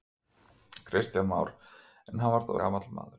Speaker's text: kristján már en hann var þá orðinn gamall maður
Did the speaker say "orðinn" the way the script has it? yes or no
no